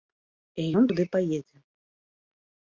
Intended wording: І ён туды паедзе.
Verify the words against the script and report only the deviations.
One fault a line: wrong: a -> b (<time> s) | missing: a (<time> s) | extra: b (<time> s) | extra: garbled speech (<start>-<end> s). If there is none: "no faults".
no faults